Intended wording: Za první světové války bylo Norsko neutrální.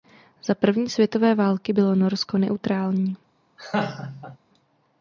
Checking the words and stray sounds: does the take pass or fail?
fail